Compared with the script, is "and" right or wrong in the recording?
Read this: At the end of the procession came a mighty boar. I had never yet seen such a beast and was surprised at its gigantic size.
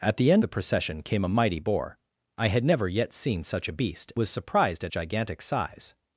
wrong